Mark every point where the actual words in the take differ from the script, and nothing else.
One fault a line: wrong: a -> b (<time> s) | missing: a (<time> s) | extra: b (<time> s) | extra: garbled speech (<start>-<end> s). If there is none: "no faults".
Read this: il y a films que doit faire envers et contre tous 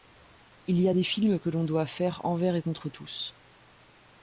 extra: des (0.9 s)
extra: l'on (1.5 s)